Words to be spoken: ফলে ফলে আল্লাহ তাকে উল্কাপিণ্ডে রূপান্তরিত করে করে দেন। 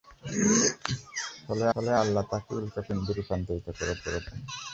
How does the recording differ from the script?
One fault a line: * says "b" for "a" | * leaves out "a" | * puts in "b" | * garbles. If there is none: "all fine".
all fine